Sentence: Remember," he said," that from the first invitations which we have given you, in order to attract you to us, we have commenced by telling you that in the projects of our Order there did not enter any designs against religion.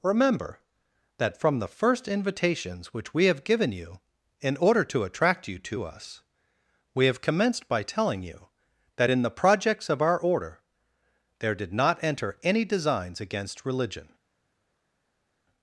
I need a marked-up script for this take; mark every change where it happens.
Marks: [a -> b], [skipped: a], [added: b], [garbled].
Remember," [skipped: he said,"] that from the first invitations which we have given you, in order to attract you to us, we have commenced by telling you that in the projects of our Order there did not enter any designs against religion.